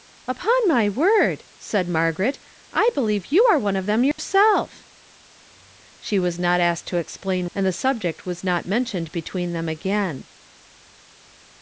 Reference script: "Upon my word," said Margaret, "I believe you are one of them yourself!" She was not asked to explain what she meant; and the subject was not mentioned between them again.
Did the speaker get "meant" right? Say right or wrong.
wrong